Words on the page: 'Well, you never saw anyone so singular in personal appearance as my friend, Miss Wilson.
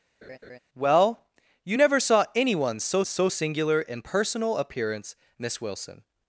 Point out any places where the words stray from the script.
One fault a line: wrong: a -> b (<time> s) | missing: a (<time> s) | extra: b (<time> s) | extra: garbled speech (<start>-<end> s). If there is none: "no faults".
extra: so (3.0 s)
missing: as my friend (5.1 s)